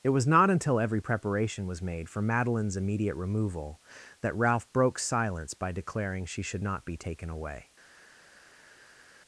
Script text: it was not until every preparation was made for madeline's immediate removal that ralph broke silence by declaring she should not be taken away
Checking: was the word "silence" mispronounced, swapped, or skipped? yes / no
no